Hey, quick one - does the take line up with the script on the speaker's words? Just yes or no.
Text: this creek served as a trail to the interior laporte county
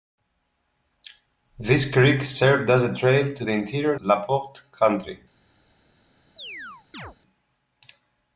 yes